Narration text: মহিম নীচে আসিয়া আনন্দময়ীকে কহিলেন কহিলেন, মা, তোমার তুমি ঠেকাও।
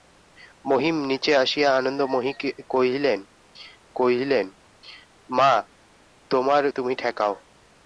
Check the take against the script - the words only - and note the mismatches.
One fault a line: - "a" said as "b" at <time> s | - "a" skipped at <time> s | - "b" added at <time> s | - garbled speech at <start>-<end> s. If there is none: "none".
none